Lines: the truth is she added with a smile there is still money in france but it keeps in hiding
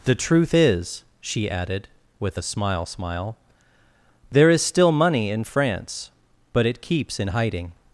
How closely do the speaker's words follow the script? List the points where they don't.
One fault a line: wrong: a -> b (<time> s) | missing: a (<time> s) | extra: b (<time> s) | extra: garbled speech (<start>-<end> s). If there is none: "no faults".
extra: smile (2.8 s)